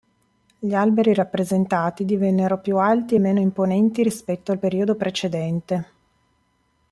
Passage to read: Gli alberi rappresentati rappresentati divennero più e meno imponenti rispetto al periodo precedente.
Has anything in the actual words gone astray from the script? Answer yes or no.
yes